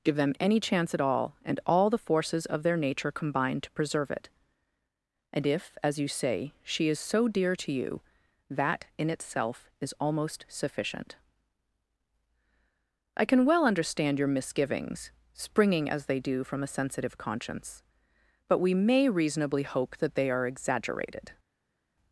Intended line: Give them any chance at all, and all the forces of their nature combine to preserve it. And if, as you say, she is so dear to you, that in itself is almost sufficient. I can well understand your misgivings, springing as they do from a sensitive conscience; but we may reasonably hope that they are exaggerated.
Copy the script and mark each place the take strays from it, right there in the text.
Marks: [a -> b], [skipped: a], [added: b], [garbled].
Give them any chance at all, and all the forces of their nature combine to preserve it. And if, as you say, she is so dear to you, that in itself is almost sufficient. I can well understand your misgivings, springing as they do from a sensitive conscience; but we may reasonably hope that they are exaggerated.